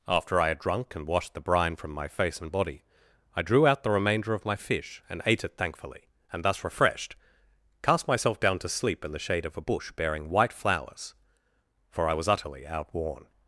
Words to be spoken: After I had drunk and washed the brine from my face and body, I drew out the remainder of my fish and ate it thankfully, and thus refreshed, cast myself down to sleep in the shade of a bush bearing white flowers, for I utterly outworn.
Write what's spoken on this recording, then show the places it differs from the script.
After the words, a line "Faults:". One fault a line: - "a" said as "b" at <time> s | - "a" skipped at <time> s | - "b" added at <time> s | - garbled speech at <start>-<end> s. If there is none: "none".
After I had drunk and washed the brine from my face and body, I drew out the remainder of my fish and ate it thankfully, and thus refreshed, cast myself down to sleep in the shade of a bush bearing white flowers, for I was utterly outworn.
Faults:
- "was" added at 12.1 s